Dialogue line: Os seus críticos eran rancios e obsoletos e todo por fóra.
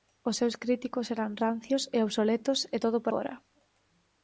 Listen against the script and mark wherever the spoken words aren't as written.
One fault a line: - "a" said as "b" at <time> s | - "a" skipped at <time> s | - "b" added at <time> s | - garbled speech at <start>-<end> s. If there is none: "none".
none